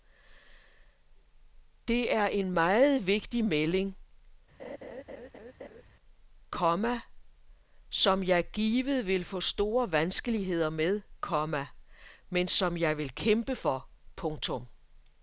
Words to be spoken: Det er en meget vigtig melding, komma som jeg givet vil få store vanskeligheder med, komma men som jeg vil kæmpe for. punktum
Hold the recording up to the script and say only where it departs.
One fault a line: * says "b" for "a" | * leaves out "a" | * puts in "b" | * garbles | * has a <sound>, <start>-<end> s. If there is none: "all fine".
* has a laugh, 4.6-5.8 s